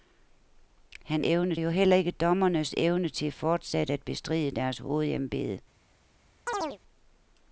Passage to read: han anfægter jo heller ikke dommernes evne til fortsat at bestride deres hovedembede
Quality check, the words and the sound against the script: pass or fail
fail